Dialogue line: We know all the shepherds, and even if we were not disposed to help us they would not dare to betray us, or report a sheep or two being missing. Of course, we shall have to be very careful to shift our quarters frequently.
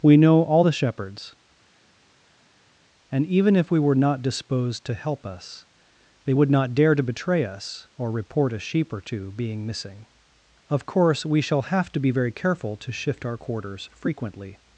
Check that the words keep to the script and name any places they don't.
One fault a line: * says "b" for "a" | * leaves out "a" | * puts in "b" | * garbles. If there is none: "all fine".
all fine